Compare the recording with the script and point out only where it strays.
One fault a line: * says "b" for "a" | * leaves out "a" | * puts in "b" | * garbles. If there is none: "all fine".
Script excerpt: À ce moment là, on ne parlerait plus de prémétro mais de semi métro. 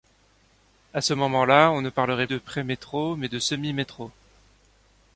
* leaves out "plus"